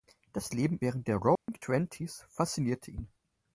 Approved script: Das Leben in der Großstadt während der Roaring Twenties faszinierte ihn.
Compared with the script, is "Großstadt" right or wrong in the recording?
wrong